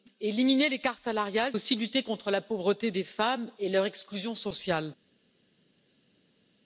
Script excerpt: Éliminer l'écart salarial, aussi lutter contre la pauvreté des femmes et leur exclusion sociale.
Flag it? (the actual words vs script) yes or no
no